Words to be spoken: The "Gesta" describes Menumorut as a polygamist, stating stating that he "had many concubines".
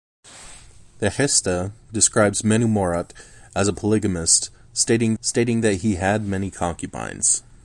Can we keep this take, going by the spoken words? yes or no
yes